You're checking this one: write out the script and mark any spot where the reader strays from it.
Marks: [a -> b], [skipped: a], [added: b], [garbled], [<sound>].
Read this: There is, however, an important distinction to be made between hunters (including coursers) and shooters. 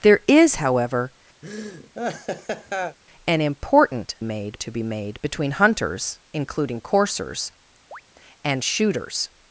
There is, however, [laugh] an important [distinction -> made] to be made between hunters (including coursers) [chirp] and shooters.